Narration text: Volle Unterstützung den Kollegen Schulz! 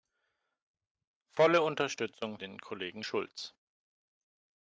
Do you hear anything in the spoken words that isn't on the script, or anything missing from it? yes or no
no